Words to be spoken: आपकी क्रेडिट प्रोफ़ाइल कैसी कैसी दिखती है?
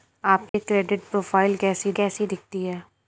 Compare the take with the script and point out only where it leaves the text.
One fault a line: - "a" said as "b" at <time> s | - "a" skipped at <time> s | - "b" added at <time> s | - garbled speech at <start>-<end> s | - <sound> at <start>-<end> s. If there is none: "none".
- dropout at 0.5-0.5 s